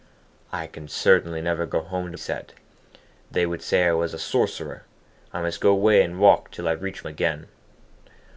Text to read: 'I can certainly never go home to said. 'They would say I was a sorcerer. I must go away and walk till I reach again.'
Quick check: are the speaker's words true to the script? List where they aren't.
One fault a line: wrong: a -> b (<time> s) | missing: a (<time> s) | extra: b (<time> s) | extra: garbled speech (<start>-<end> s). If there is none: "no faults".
no faults